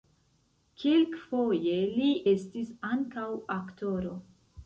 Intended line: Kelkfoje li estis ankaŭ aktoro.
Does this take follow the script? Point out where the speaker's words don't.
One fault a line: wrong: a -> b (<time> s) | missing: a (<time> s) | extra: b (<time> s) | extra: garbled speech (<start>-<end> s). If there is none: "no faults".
no faults